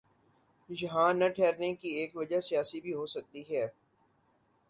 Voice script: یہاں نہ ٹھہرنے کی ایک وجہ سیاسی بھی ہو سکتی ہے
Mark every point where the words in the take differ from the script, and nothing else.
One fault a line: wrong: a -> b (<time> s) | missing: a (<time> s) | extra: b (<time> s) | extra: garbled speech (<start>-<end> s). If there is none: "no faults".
no faults